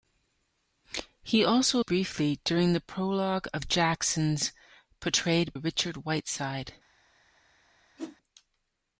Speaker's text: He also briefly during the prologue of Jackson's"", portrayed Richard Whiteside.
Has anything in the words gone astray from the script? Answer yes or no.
no